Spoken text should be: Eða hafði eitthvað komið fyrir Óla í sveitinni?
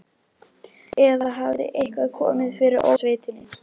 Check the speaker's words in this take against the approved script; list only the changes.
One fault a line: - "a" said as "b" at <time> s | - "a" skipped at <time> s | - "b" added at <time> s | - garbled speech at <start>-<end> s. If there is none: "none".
- "Óla" skipped at 2.9 s